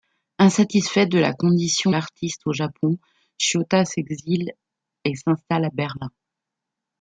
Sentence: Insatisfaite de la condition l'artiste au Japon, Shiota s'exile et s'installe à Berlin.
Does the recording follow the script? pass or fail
pass